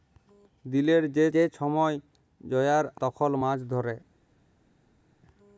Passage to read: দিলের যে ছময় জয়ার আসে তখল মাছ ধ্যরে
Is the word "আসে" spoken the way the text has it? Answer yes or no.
no